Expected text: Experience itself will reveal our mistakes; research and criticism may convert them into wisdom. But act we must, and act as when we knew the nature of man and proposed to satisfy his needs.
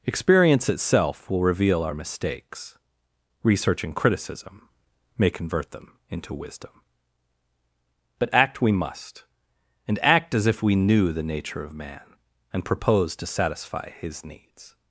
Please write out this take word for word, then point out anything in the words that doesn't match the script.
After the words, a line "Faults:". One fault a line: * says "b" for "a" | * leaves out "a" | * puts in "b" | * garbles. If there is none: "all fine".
Experience itself will reveal our mistakes; research and criticism may convert them into wisdom. But act we must, and act as if we knew the nature of man and proposed to satisfy his needs.
Faults:
* says "if" for "when"